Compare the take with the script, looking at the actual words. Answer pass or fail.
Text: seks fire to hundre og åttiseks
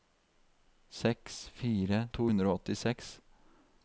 pass